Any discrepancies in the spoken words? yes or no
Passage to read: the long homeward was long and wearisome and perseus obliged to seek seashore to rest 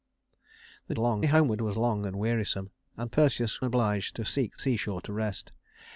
no